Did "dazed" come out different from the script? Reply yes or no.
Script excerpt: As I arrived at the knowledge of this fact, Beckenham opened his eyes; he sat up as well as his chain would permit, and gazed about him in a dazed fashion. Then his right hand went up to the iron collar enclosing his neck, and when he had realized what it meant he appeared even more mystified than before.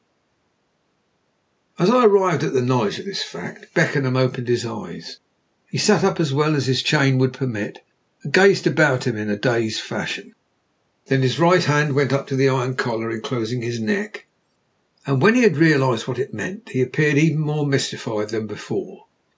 no